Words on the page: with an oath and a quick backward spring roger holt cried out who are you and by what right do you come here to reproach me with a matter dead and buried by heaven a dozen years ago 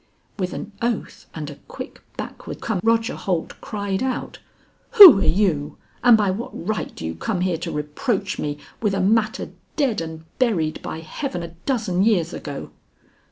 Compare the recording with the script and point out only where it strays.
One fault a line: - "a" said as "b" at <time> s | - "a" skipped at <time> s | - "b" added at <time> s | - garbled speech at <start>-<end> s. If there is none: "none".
- "spring" said as "come" at 2.6 s